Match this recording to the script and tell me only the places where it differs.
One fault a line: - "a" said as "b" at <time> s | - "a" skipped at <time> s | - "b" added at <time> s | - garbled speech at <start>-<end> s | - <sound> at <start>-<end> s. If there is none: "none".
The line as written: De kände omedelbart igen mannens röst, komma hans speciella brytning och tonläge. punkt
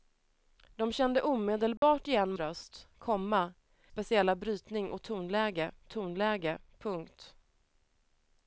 - dropout at 1.8-1.8 s
- "mannens" skipped at 2.3 s
- "hans" skipped at 3.5 s
- "tonläge" added at 5.9 s